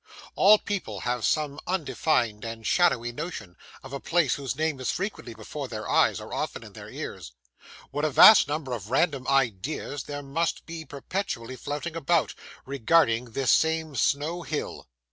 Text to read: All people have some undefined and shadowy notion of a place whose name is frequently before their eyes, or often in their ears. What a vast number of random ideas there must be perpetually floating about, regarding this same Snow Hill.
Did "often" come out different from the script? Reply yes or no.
no